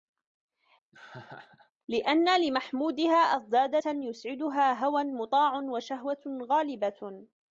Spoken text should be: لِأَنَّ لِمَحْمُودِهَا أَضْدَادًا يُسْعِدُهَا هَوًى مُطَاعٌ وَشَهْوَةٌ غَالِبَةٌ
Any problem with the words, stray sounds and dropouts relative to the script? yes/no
yes